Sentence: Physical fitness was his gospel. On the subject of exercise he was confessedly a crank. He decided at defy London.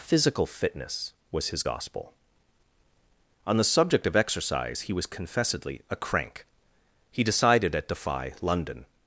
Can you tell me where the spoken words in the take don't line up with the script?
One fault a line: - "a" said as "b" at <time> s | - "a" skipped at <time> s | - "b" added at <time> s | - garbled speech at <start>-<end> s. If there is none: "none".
none